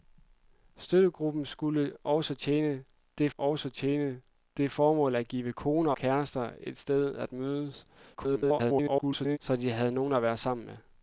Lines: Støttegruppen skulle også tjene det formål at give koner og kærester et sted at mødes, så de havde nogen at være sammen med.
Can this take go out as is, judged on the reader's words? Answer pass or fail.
fail